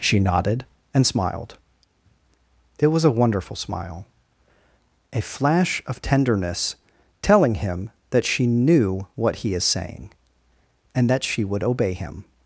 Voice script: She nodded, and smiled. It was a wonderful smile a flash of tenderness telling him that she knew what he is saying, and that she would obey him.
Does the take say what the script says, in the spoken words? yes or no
yes